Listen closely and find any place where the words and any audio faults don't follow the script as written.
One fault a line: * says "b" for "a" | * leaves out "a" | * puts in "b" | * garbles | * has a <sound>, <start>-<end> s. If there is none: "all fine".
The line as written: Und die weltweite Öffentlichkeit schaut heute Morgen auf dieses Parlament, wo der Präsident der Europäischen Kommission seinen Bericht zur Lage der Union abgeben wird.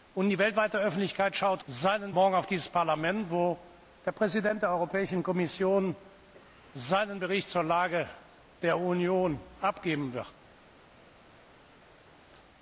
* says "seinen" for "heute"